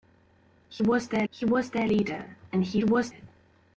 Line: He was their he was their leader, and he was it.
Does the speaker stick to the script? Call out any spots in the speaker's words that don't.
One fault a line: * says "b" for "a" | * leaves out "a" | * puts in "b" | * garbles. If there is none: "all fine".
all fine